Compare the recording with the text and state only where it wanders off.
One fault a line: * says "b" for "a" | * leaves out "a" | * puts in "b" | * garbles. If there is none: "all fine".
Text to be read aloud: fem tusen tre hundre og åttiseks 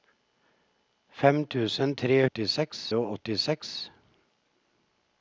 * says "åttiseks" for "hundre"